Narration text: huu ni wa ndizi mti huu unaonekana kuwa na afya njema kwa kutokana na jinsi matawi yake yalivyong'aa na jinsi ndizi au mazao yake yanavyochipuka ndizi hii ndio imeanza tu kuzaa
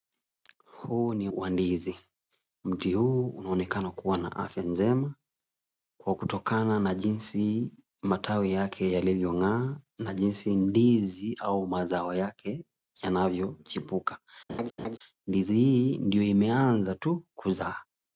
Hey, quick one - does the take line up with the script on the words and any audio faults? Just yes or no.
no